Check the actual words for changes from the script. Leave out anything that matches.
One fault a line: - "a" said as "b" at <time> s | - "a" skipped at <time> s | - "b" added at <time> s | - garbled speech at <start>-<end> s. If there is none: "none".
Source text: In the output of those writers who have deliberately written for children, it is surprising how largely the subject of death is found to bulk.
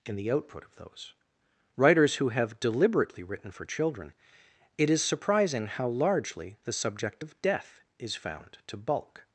none